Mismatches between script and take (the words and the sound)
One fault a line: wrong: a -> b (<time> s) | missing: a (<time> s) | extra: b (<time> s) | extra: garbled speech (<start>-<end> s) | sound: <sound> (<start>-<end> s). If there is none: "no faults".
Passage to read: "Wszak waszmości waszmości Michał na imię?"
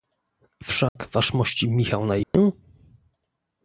sound: dropout (0.9-1.0 s)
missing: waszmości (1.7 s)
sound: dropout (2.2-2.3 s)